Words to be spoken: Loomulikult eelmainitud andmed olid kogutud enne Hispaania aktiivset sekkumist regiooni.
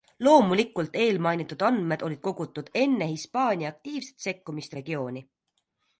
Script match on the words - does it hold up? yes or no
yes